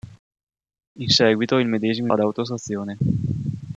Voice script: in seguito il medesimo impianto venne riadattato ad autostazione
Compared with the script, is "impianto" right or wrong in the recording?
wrong